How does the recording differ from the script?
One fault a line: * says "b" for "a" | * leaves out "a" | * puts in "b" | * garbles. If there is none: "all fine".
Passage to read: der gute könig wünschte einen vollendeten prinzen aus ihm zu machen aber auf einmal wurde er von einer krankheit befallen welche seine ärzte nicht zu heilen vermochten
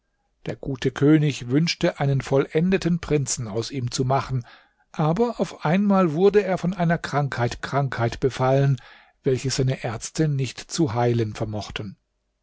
* puts in "krankheit"